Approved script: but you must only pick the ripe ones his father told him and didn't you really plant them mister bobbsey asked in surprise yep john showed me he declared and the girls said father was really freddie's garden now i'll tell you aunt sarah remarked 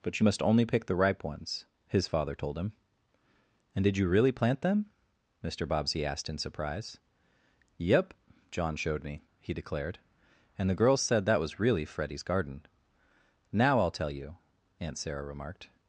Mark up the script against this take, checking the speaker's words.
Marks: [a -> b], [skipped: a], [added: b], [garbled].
but you must only pick the ripe ones his father told him and [didn't -> did] you really plant them mister bobbsey asked in surprise yep john showed me he declared and the girls said [father -> that] was really freddie's garden now i'll tell you aunt sarah remarked